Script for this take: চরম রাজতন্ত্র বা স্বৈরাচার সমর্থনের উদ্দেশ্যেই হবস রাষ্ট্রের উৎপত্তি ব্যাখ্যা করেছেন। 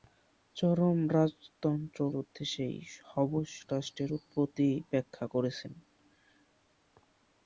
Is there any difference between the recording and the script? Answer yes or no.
yes